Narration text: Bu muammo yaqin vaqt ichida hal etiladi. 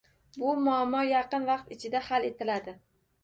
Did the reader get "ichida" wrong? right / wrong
right